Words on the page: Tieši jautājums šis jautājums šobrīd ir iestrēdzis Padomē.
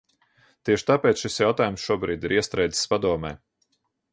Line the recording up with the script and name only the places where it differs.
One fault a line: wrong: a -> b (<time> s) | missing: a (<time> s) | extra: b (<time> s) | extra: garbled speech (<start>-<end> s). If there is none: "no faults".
wrong: jautājums -> tāpēc (0.9 s)